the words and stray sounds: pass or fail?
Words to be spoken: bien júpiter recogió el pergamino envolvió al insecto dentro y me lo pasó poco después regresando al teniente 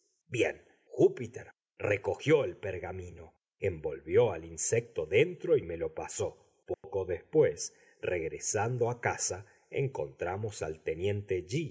fail